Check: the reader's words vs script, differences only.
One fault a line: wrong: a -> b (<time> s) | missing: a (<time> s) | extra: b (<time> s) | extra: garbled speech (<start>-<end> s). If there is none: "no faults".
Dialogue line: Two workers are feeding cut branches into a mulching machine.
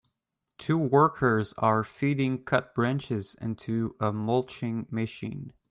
no faults